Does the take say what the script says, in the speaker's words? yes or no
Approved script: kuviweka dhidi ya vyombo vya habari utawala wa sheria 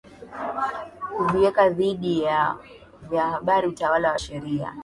yes